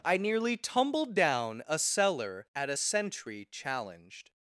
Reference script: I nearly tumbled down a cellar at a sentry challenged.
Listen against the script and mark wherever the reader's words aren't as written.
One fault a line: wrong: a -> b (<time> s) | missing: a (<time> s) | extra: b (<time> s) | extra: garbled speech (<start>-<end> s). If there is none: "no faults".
no faults